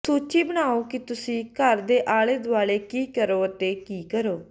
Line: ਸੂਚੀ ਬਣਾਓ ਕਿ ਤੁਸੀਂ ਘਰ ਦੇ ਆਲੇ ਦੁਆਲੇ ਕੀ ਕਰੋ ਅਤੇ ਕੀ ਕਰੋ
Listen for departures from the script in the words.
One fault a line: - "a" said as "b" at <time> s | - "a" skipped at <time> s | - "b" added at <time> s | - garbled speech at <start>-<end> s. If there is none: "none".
none